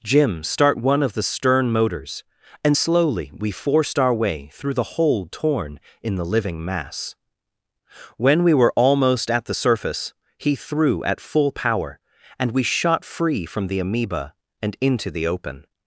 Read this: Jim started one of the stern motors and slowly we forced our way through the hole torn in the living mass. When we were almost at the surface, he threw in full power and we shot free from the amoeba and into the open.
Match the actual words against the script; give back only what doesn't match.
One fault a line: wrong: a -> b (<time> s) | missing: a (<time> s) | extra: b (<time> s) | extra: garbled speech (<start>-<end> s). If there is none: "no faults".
wrong: started -> start (0.4 s)
wrong: in -> at (11.0 s)